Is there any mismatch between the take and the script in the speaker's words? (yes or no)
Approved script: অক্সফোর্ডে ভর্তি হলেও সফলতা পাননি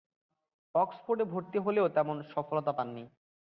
yes